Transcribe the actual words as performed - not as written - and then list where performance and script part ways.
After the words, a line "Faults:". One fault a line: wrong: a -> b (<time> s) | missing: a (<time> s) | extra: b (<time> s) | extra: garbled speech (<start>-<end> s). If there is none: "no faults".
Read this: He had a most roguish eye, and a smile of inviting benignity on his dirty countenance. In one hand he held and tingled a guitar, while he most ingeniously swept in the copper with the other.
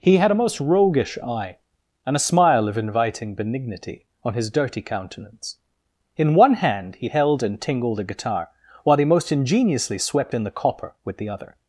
He had a most roguish eye, and a smile of inviting benignity on his dirty countenance. In one hand he held and tingled a guitar, while he most ingeniously swept in the copper with the other.
Faults:
no faults